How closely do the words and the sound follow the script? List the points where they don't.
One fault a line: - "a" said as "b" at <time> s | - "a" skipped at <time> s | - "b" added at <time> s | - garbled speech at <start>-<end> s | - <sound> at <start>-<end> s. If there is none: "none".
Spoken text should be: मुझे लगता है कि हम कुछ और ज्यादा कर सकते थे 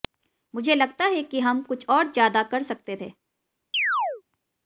- chirp at 3.7-4.2 s